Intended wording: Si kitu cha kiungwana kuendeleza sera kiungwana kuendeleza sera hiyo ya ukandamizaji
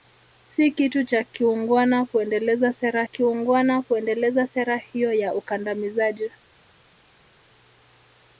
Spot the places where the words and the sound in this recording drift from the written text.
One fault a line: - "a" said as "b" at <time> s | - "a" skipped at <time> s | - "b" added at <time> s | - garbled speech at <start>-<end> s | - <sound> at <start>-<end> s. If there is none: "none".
none